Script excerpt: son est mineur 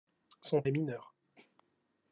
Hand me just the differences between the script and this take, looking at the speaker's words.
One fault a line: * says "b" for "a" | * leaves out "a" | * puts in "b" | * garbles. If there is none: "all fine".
all fine